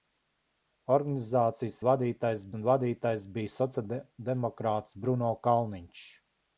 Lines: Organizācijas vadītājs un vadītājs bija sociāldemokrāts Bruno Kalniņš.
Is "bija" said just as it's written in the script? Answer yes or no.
yes